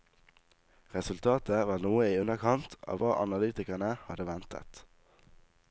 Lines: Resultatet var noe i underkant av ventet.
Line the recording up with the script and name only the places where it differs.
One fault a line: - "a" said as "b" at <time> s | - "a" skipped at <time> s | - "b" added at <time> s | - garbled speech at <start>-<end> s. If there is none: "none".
- "hva analytikerne hadde" added at 3.0 s